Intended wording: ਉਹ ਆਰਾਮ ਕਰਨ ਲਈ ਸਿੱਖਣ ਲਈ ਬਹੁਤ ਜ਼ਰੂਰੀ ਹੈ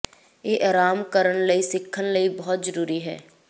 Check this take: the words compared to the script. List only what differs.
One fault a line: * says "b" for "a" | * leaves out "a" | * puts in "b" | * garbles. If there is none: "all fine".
* says "ਇਹ" for "ਉਹ"